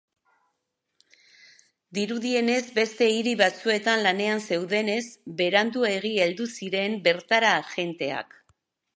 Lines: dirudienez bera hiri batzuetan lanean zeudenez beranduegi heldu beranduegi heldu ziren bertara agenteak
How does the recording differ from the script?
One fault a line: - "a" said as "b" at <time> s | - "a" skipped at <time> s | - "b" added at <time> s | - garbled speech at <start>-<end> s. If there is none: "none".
- "bera" said as "beste" at 2.8 s
- "beranduegi heldu" skipped at 6.5 s